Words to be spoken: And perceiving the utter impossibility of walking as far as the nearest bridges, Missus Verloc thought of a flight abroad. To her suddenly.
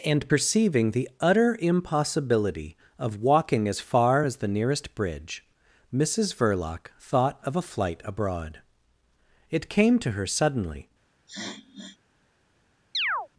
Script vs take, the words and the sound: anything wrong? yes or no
yes